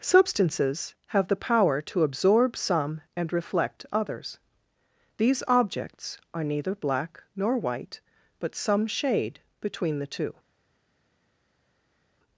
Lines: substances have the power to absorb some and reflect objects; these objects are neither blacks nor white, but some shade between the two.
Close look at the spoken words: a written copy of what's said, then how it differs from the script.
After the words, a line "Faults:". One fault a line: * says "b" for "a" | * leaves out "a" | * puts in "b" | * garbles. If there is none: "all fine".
substances have the power to absorb some and reflect others; these objects are neither black nor white, but some shade between the two.
Faults:
* says "others" for "objects"
* says "black" for "blacks"